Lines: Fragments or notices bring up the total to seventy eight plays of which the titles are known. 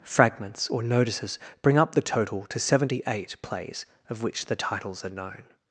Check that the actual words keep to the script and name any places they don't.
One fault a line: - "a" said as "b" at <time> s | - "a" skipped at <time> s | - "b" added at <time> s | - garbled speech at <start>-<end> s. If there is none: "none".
none